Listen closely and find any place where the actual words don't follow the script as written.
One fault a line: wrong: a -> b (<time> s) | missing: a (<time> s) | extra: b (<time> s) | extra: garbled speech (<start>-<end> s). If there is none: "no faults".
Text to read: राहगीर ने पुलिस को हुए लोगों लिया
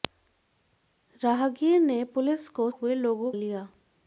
no faults